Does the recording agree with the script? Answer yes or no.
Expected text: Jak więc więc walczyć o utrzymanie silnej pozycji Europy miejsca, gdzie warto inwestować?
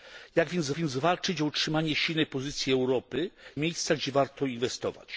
yes